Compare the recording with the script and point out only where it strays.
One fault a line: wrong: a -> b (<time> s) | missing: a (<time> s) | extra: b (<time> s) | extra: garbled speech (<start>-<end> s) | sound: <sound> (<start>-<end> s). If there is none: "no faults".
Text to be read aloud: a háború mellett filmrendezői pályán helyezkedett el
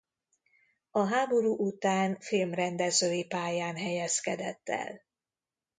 wrong: mellett -> után (1.6 s)